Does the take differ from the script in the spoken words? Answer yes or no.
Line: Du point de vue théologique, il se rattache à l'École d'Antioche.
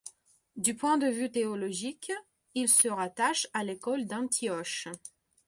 no